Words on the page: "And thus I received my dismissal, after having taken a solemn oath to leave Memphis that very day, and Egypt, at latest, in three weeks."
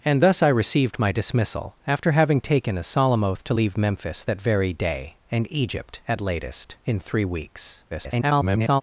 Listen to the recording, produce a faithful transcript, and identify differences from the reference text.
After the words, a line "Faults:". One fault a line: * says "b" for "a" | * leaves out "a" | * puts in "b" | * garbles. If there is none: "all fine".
"And thus I received my dismissal, after having taken a solemn oath to leave Memphis that very day, and Egypt, at latest, in three weeks." [garbled]
Faults:
* garbles